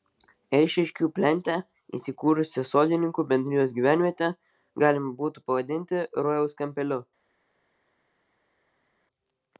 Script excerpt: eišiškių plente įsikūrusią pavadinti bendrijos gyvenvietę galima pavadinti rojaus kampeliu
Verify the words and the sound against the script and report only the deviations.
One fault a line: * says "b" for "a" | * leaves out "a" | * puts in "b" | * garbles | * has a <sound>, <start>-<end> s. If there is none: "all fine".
* says "sodininkų" for "pavadinti"
* puts in "būtų"